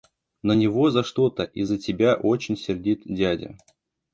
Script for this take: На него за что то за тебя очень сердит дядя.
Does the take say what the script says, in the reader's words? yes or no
no